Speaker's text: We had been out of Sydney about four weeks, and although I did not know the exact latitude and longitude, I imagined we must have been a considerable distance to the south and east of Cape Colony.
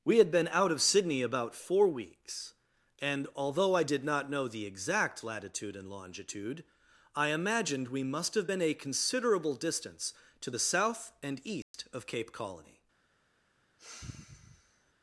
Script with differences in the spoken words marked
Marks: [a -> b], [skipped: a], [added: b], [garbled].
We had been out of Sydney about four weeks, and although I did not know the exact latitude and longitude, I imagined we must have been a considerable distance to the south and east of Cape Colony.